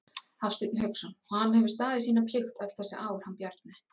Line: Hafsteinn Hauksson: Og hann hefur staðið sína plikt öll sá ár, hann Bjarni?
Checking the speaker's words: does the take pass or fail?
fail